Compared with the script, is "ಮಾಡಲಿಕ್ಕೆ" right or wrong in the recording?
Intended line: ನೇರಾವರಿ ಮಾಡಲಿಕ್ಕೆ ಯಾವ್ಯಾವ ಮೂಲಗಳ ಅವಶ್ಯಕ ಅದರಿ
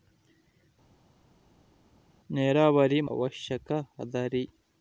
wrong